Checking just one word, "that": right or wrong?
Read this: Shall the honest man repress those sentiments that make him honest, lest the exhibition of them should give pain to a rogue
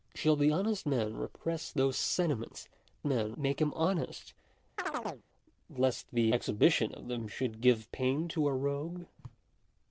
wrong